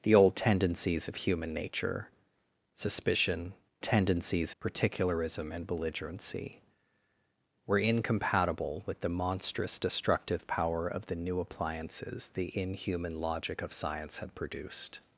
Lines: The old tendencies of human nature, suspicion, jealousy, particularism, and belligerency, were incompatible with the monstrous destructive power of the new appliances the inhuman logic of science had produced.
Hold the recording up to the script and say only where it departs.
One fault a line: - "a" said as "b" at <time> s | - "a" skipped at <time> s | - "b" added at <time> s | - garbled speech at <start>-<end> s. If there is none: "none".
- "jealousy" said as "tendencies" at 3.8 s